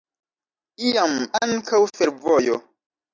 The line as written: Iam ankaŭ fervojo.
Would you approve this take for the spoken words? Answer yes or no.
yes